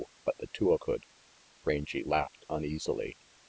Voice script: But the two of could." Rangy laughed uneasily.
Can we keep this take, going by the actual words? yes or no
yes